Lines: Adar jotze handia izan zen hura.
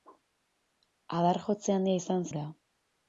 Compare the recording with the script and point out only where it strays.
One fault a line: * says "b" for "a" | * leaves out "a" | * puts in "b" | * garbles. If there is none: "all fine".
* leaves out "zen"